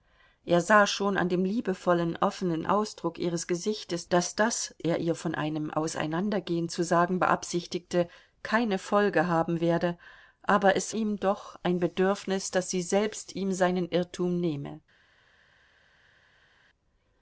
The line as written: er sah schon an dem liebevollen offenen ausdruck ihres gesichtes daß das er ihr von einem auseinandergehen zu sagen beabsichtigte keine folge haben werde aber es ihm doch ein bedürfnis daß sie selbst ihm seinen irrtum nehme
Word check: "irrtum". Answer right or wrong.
right